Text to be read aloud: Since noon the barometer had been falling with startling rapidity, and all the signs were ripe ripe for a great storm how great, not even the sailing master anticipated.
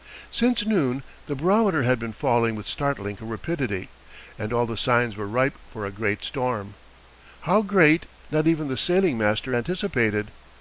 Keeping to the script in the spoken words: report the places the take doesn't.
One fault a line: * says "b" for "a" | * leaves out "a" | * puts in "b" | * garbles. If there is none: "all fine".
* leaves out "ripe"